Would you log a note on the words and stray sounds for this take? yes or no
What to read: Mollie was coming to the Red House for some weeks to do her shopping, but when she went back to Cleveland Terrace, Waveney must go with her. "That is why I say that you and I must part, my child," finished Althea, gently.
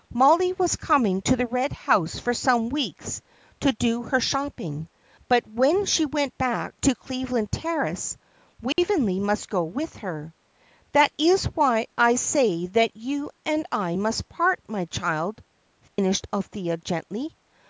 yes